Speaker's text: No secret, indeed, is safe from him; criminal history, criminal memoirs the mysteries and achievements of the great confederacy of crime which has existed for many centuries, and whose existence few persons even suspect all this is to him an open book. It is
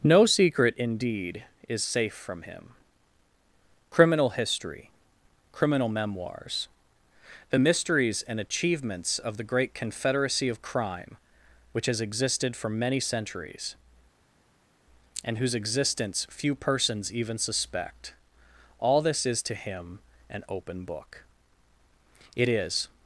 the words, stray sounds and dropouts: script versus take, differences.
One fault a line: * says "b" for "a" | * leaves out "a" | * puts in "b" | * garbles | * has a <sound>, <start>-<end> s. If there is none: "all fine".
all fine